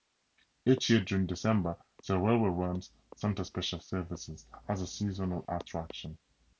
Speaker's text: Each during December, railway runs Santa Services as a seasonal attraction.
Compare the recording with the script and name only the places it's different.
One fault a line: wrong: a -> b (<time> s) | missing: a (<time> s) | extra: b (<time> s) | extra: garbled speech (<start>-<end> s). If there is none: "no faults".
extra: year (0.9 s)
extra: the (2.1 s)
extra: Special (3.4 s)